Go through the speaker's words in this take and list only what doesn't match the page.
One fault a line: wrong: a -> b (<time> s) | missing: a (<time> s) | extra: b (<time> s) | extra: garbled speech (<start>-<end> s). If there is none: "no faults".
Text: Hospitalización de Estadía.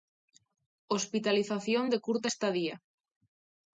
extra: Curta (2.0 s)